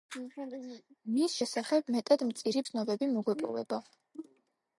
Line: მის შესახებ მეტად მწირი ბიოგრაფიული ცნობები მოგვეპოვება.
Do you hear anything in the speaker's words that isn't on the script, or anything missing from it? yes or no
yes